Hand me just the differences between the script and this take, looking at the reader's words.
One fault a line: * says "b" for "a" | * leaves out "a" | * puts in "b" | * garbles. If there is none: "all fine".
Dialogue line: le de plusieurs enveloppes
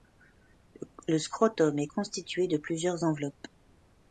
* puts in "scrotum est constitué"